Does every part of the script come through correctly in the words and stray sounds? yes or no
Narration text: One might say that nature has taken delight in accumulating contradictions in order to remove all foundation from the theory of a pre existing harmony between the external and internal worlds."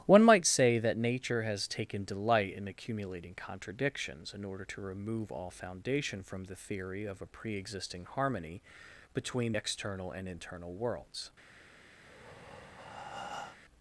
no